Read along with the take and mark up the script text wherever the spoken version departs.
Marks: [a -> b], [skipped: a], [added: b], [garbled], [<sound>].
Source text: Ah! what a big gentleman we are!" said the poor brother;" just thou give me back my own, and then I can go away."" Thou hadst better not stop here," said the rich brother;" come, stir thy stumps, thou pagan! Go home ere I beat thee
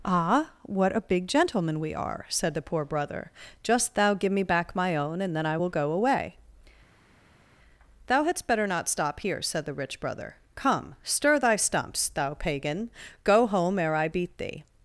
Ah! what a big gentleman we are!" said the poor brother;" just thou give me back my own, and then I [can -> will] go away."" Thou hadst better not stop here," said the rich brother;" come, stir thy stumps, thou pagan! Go home ere I beat thee